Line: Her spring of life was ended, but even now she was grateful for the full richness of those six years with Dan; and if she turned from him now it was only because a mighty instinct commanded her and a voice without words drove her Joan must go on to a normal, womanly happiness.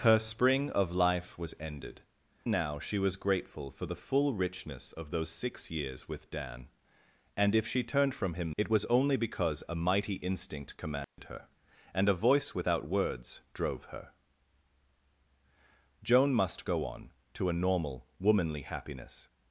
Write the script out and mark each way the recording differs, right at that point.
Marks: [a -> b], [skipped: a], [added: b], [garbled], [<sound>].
Her spring of life was ended, [skipped: but even] now she was grateful for the full richness of those six years with Dan; and if she turned from him [skipped: now] it was only because a mighty instinct commanded [dropout] her and a voice without words drove her Joan must go on to a normal, womanly happiness.